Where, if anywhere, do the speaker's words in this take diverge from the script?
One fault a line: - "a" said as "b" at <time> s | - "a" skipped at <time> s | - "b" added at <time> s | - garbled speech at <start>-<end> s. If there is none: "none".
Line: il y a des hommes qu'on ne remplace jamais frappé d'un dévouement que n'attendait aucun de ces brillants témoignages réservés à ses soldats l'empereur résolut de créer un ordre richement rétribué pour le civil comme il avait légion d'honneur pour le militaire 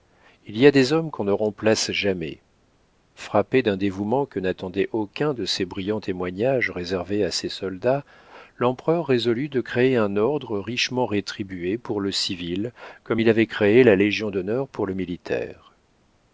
- "créé la" added at 13.5 s